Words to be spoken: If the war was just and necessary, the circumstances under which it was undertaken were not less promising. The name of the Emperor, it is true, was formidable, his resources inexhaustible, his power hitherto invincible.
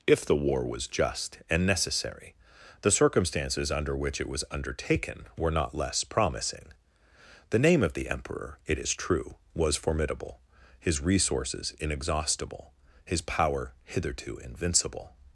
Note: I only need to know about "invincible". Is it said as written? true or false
true